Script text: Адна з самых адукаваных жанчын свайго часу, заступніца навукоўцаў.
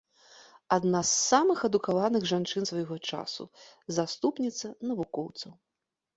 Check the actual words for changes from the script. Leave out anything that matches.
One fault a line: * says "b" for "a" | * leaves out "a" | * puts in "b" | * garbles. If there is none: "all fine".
all fine